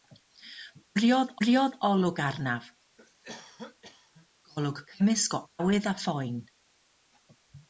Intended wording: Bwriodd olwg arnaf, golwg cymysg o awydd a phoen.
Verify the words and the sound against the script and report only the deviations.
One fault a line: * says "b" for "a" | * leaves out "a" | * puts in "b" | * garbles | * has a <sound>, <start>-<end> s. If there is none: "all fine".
* puts in "bwriodd"
* has a cough, 3.0-4.3 s